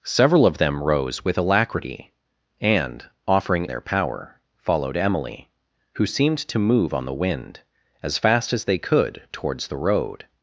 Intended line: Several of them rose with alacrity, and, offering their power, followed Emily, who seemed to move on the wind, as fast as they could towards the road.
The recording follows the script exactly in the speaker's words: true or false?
true